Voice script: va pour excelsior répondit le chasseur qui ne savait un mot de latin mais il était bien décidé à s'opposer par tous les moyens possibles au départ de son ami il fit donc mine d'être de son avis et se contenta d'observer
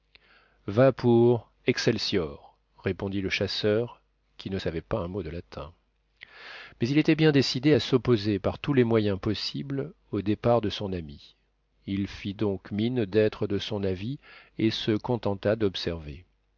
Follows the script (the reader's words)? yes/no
no